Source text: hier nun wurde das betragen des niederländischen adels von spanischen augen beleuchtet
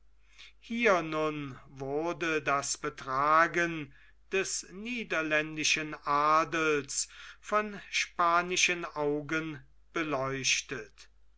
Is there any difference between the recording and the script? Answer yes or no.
no